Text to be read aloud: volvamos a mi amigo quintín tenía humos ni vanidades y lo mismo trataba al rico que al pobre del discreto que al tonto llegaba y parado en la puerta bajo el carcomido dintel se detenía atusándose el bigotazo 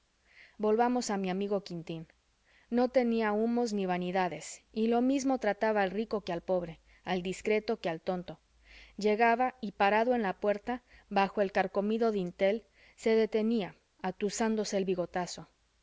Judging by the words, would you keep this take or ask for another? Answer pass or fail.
fail